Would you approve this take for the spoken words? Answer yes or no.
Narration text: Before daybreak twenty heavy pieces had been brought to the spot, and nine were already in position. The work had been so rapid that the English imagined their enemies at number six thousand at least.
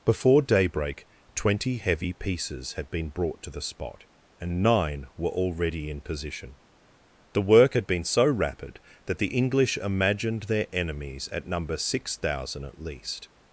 yes